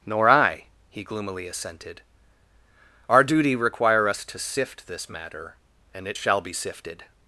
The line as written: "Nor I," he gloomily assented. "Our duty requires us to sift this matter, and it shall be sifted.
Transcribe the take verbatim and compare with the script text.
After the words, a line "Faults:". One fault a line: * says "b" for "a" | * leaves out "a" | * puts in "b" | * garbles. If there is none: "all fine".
"Nor I," he gloomily assented. "Our duty require us to sift this matter, and it shall be sifted.
Faults:
* says "require" for "requires"